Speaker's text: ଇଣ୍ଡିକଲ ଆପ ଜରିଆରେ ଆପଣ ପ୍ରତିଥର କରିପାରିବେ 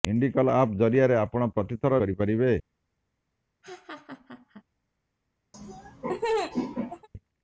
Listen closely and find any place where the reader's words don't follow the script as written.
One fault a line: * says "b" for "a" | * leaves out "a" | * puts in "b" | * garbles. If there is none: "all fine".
all fine